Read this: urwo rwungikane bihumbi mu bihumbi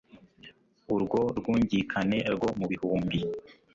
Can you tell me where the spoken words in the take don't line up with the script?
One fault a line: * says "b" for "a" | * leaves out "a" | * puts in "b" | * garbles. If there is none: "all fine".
* says "rwo" for "bihumbi"